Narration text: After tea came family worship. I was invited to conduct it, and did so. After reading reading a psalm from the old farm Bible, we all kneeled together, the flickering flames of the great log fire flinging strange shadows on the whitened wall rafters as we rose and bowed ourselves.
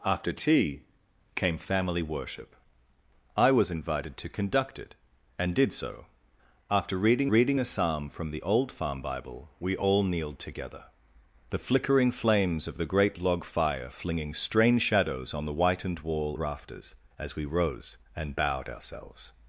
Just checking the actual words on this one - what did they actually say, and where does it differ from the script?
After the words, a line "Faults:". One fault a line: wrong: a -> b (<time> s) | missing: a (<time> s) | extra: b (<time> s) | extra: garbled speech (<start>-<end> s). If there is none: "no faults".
After tea came family worship. I was invited to conduct it, and did so. After reading reading a psalm from the old farm Bible, we all kneeled together, the flickering flames of the great log fire flinging strange shadows on the whitened wall rafters as we rose and bowed ourselves.
Faults:
no faults